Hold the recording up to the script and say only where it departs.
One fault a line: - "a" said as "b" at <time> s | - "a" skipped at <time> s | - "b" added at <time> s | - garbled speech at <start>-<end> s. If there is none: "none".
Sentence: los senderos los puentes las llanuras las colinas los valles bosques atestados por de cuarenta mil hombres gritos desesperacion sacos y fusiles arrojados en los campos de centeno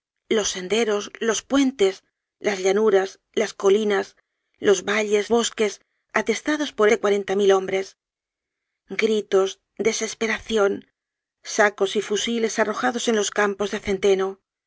none